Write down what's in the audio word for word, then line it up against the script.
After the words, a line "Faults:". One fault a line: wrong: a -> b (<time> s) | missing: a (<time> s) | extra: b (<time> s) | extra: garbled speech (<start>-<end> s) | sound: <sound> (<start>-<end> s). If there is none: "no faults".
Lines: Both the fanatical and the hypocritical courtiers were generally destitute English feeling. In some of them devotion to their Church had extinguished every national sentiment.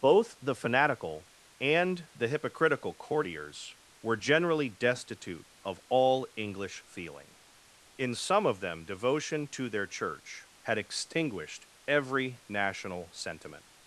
Both the fanatical and the hypocritical courtiers were generally destitute of all English feeling. In some of them devotion to their Church had extinguished every national sentiment.
Faults:
extra: of all (5.6 s)